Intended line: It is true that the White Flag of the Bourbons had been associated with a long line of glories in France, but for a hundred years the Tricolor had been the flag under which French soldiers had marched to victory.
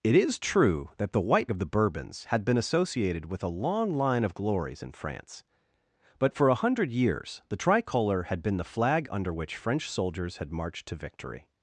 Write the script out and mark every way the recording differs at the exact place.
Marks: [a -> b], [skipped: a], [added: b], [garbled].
It is true that the White [skipped: Flag] of the Bourbons had been associated with a long line of glories in France, but for a hundred years the Tricolor had been the flag under which French soldiers had marched to victory.